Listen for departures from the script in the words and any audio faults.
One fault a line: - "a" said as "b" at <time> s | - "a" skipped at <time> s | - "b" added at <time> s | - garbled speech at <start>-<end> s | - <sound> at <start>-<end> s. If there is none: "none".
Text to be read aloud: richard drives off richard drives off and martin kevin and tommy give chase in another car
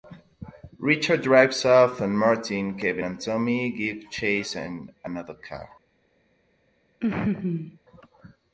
- "richard drives off" skipped at 2.0 s
- laugh at 7.0-7.8 s